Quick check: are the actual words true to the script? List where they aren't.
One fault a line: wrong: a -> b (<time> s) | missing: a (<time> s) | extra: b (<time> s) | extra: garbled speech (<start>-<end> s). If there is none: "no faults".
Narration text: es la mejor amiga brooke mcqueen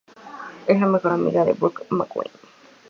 extra: de (1.4 s)